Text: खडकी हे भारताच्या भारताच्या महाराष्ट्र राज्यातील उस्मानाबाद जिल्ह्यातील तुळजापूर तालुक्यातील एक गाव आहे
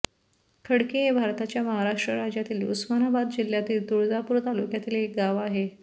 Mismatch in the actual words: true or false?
true